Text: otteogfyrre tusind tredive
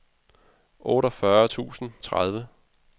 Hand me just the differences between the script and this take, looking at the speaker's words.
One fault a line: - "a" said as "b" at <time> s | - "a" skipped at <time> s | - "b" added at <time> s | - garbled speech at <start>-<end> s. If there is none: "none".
none